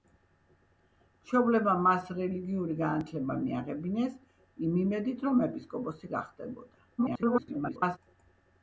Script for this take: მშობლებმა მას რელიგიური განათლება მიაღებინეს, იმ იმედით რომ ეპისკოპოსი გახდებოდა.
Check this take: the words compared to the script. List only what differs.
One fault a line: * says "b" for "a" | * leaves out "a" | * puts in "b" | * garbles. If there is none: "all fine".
* garbles